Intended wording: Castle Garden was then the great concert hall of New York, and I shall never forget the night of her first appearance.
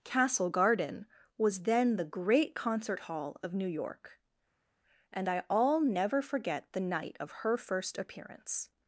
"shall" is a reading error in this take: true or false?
true